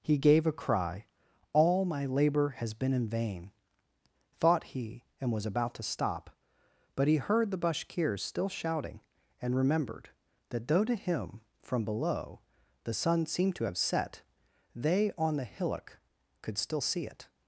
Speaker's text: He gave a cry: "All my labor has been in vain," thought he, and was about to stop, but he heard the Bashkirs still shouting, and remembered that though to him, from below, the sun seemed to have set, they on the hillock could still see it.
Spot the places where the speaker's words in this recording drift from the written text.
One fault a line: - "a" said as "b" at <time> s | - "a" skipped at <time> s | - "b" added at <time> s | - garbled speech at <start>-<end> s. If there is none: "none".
none